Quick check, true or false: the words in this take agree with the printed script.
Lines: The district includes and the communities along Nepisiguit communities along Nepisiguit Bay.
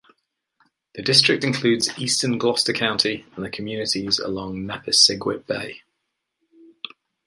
false